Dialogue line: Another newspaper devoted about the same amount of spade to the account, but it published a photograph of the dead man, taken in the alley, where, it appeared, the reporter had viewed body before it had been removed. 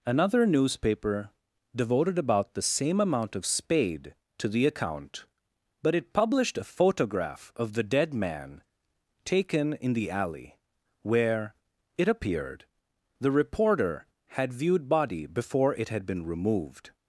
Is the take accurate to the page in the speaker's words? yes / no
yes